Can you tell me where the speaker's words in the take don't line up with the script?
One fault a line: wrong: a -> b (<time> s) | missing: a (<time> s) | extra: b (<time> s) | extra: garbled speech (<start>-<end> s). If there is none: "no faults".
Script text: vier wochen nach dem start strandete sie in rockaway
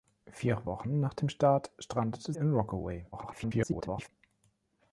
missing: sie (2.3 s)
extra: garbled speech (3.1-4.1 s)